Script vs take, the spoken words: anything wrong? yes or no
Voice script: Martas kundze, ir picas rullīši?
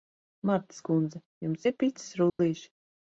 yes